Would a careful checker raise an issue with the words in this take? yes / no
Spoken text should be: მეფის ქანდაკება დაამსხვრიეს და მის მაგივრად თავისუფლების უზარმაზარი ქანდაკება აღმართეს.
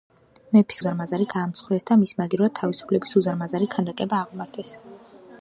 yes